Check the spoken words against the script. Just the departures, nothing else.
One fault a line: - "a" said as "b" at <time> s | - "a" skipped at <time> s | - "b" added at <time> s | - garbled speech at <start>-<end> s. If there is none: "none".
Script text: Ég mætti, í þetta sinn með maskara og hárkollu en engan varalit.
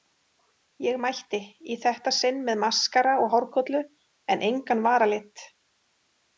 none